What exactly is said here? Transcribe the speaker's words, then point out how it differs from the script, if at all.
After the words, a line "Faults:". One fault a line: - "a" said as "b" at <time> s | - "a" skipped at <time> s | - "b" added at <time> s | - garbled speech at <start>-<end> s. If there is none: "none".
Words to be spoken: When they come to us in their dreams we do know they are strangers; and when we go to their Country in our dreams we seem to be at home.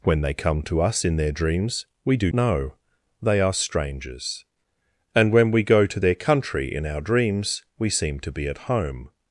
When they come to us in their dreams we do know they are strangers; and when we go to their Country in our dreams we seem to be at home.
Faults:
none